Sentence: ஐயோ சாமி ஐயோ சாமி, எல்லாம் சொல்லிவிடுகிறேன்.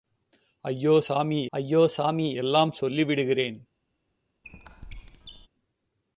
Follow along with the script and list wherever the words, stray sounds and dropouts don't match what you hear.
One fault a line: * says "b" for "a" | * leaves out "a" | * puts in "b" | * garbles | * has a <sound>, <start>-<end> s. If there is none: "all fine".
* has a squeak, 4.4-5.5 s